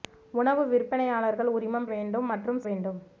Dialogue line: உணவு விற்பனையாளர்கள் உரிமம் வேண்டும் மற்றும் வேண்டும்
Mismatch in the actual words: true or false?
false